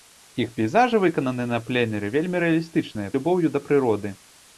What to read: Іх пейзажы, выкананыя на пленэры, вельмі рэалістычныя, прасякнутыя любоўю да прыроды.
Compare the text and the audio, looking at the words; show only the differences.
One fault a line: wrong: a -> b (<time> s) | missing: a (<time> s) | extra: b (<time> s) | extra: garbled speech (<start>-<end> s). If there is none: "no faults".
missing: прасякнутыя (3.1 s)